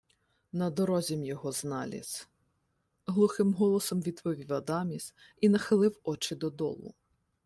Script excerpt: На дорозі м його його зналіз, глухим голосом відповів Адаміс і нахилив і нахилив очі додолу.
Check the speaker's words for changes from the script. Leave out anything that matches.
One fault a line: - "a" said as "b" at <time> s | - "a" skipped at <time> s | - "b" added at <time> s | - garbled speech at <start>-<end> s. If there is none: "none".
- "його" skipped at 1.5 s
- "і нахилив" skipped at 6.0 s